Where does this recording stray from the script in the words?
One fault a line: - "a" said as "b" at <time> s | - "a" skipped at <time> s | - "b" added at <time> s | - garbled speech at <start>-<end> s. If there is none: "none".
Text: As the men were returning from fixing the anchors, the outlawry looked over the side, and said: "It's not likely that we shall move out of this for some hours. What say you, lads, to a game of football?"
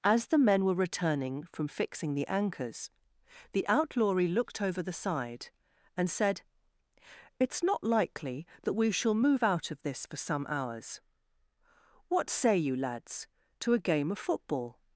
none